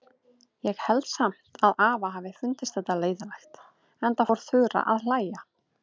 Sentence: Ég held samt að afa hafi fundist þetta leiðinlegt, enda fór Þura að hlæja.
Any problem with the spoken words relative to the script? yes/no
no